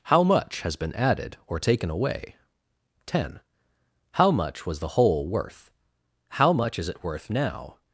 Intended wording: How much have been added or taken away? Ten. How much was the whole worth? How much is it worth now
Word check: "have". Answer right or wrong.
wrong